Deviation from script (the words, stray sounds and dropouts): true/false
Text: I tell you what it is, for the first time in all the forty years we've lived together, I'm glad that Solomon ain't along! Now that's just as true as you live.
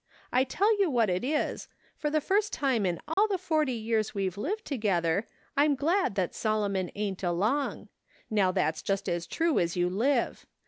true